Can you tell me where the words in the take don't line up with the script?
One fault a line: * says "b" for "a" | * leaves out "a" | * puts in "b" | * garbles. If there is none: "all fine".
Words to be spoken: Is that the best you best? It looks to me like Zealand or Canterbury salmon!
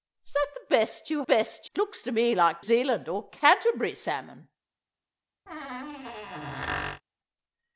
all fine